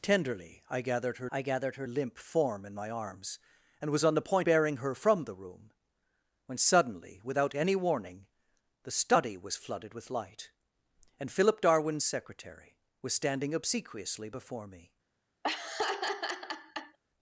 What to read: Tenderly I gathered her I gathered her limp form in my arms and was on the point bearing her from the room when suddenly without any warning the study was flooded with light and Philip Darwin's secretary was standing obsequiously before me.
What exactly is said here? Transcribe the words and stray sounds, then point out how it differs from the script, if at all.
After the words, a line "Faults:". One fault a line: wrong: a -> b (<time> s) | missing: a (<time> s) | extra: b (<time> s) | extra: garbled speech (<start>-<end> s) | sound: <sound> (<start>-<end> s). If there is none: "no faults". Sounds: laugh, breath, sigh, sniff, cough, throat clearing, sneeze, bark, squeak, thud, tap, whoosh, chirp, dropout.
Tenderly I gathered her I gathered her limp form in my arms and was on the point bearing her from the room when suddenly without any warning the study was flooded with light and Philip Darwin's secretary was standing obsequiously before me.
Faults:
sound: laugh (15.4-17.0 s)